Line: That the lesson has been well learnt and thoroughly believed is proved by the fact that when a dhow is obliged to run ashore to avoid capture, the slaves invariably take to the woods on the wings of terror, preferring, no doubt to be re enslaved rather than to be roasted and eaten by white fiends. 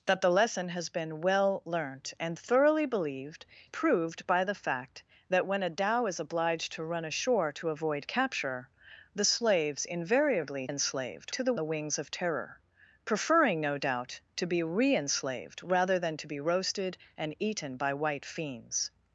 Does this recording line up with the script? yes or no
no